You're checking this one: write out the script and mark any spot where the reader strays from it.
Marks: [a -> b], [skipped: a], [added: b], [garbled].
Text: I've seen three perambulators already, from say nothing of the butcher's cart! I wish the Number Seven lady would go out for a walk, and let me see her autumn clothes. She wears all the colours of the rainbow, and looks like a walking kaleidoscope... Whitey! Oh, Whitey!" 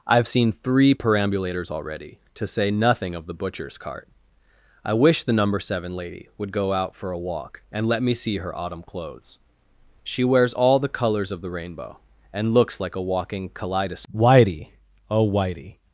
I've seen three perambulators already, [from -> to] say nothing of the butcher's cart! I wish the Number Seven lady would go out for a walk, and let me see her autumn clothes. She wears all the colours of the rainbow, and looks like a walking kaleidoscope... Whitey! Oh, Whitey!"